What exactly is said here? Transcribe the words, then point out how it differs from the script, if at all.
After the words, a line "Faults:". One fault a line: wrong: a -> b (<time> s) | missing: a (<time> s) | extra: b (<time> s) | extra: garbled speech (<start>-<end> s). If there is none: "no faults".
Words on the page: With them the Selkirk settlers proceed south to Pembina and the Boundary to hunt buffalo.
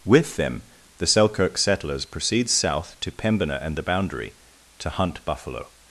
With them the Selkirk settlers proceed south to Pembina and the Boundary to hunt buffalo.
Faults:
no faults